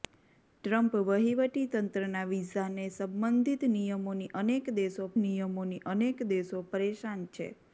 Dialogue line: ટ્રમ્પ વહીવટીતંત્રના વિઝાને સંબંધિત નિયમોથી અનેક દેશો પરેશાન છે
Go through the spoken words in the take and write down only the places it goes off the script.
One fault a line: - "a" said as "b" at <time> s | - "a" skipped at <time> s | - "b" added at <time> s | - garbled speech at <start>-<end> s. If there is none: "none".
- "નિયમોથી અનેક દેશો" added at 5.2 s